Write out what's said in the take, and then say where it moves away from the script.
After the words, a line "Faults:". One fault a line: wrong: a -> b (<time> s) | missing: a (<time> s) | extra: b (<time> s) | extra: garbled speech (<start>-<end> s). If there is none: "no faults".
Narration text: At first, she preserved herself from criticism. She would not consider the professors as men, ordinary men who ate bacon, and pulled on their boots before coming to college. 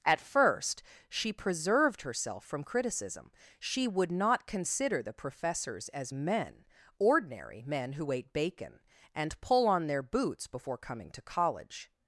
At first, she preserved herself from criticism. She would not consider the professors as men, ordinary men who ate bacon, and pull on their boots before coming to college.
Faults:
wrong: pulled -> pull (9.4 s)